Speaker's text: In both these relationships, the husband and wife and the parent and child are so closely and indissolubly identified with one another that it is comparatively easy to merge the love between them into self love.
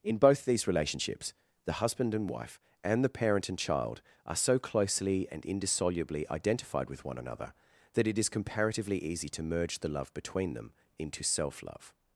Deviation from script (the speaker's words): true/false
false